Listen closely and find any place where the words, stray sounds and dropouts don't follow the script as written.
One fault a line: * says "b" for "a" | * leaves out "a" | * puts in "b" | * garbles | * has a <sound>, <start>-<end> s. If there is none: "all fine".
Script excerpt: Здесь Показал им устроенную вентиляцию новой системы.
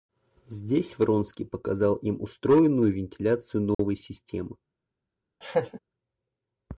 * puts in "Вронский"
* has a dropout, 3.7-3.8 s
* has a laugh, 5.4-5.8 s